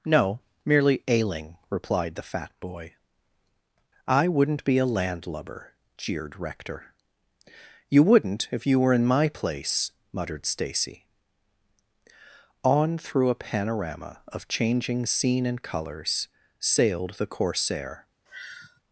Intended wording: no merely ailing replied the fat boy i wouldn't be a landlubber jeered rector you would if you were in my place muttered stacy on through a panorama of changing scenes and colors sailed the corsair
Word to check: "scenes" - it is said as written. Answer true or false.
false